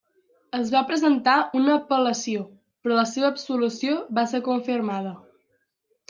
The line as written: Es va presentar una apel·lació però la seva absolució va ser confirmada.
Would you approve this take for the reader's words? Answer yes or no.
yes